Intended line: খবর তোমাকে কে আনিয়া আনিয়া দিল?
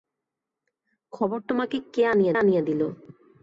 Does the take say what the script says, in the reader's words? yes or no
yes